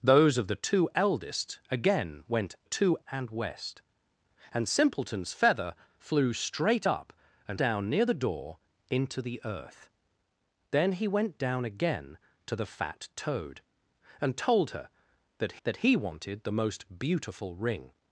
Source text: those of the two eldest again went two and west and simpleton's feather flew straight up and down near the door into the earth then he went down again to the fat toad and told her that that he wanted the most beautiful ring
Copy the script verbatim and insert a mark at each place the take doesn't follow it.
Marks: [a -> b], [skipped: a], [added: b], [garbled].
those of the two eldest again went two and west and simpleton's feather flew straight up and down near the door into the earth then he went down again to the fat toad and told her that that he wanted the most beautiful ring